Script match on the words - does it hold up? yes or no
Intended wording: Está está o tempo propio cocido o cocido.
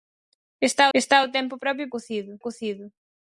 yes